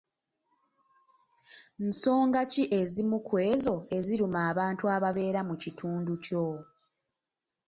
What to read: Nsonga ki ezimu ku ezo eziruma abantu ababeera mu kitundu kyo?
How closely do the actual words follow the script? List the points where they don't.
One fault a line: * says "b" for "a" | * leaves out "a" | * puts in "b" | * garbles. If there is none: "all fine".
all fine